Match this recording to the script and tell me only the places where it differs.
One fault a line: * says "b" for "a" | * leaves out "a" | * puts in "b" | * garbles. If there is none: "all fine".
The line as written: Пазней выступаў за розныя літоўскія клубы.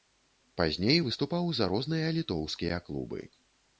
all fine